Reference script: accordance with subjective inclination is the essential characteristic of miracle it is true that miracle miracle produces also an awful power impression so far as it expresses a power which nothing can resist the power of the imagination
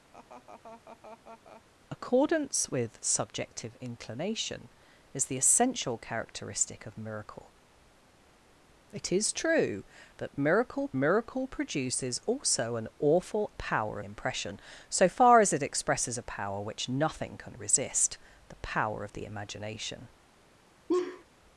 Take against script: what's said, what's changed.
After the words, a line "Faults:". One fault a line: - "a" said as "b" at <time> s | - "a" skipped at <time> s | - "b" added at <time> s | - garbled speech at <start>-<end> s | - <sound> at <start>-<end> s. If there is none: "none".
accordance with subjective inclination is the essential characteristic of miracle it is true that miracle miracle produces also an awful power impression so far as it expresses a power which nothing can resist the power of the imagination
Faults:
- laugh at 0.1-1.6 s
- laugh at 20.9-21.2 s